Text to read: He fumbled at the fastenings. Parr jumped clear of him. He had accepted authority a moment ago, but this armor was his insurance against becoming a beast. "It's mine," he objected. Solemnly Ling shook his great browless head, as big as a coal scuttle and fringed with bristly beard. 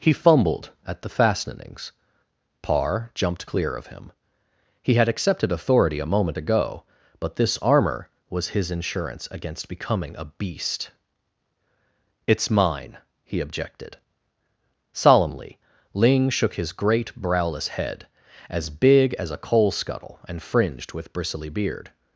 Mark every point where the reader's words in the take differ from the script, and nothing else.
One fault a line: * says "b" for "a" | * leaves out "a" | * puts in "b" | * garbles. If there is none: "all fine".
all fine